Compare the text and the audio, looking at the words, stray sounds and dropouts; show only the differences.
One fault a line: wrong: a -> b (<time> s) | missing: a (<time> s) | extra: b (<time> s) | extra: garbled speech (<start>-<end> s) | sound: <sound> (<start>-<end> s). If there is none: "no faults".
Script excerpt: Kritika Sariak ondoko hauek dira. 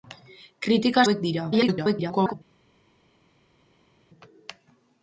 missing: Sariak ondoko (1.0 s)
extra: garbled speech (1.5-2.3 s)